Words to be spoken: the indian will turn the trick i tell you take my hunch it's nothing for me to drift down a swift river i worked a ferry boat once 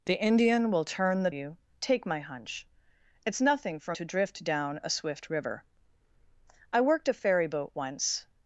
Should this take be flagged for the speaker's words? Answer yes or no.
yes